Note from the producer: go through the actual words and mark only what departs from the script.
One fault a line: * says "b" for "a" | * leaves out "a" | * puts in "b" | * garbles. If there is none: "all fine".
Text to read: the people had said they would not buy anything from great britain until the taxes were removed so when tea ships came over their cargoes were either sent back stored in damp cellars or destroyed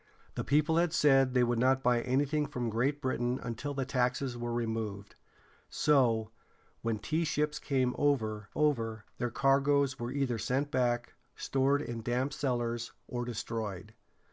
* puts in "over"